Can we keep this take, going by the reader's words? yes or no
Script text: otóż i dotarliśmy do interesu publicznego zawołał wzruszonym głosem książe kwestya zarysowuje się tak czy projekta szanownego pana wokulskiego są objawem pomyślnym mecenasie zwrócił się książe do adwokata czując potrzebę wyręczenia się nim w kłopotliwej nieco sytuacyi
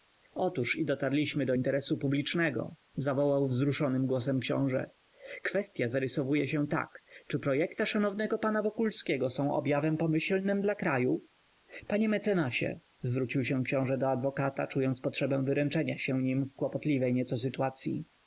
no